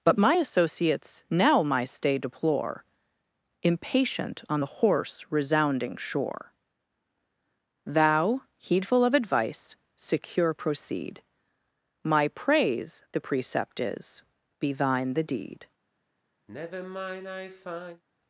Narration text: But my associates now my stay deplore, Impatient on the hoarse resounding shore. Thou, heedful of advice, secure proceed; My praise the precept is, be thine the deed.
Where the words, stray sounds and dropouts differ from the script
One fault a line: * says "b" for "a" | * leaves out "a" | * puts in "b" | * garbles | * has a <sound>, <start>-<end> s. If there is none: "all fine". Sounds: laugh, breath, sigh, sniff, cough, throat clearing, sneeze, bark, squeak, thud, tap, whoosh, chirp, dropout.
* has a sigh, 16.5-18.0 s